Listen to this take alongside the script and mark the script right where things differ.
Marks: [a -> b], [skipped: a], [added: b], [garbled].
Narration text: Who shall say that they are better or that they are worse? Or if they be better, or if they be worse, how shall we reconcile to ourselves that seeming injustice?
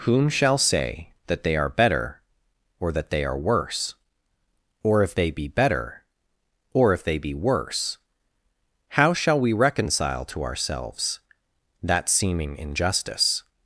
[Who -> Whom] shall say that they are better or that they are worse? Or if they be better, or if they be worse, how shall we reconcile to ourselves that seeming injustice?